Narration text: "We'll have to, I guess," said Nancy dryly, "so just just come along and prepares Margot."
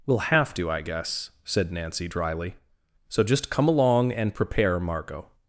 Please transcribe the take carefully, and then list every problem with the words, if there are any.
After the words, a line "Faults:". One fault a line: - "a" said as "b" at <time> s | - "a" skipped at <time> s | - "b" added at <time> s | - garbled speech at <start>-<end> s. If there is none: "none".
"We'll have to, I guess," said Nancy dryly, "so just come along and prepare Margot."
Faults:
- "just" skipped at 3.5 s
- "prepares" said as "prepare" at 4.3 s